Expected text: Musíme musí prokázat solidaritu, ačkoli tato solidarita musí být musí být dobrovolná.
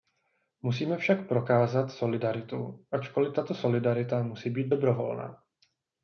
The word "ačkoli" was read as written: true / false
true